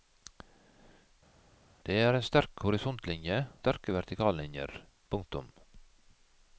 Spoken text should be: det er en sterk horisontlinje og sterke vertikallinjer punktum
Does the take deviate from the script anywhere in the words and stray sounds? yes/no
yes